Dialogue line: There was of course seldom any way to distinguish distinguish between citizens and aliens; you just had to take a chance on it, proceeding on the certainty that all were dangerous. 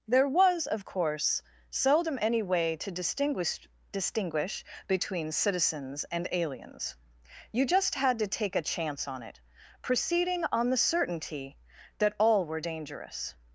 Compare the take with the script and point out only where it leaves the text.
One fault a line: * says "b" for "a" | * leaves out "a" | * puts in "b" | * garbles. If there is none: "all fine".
all fine